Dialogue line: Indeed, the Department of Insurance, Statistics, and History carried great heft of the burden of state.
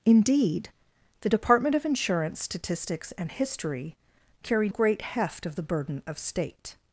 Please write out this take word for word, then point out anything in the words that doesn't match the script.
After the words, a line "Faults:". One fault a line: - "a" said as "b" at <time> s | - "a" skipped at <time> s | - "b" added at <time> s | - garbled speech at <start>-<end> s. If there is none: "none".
Indeed, the Department of Insurance, Statistics, and History carried great heft of the burden of state.
Faults:
none